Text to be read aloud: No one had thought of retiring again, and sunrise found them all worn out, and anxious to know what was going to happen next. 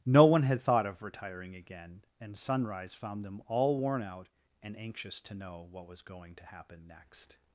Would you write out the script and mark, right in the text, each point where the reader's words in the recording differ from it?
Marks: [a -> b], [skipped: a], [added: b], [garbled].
No one had thought of retiring again, and sunrise found them all worn out, and anxious to know what was going to happen next.